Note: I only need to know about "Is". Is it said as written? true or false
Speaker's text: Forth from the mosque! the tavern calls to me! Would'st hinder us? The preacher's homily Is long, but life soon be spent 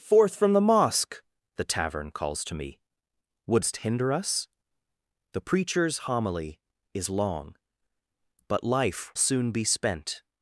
true